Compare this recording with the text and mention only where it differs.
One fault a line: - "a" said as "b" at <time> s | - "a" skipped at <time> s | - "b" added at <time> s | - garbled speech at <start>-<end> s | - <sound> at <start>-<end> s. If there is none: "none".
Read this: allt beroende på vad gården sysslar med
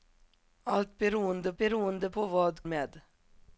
- "beroende" added at 1.6 s
- "gården sysslar" skipped at 2.6 s